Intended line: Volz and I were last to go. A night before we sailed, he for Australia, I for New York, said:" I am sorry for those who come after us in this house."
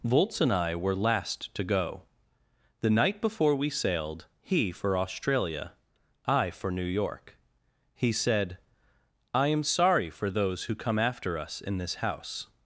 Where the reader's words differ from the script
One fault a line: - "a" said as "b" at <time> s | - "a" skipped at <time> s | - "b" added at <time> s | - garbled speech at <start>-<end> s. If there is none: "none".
- "A" said as "The" at 2.8 s
- "he" added at 7.9 s